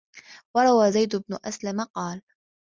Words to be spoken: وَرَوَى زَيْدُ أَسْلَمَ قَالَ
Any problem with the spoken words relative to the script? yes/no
yes